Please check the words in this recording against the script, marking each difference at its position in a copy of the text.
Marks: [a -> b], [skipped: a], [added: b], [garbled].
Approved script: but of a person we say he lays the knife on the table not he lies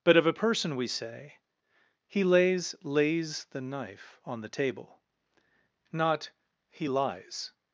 but of a person we say he lays [added: lays] the knife on the table not he lies